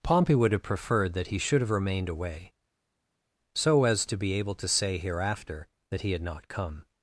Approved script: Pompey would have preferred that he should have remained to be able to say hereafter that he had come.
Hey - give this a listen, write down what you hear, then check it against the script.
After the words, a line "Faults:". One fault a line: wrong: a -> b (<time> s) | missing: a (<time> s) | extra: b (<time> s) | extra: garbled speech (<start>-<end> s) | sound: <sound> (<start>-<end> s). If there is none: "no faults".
Pompey would have preferred that he should have remained away, so as to be able to say hereafter that he had not come.
Faults:
extra: away so as (2.1 s)
extra: not (6.2 s)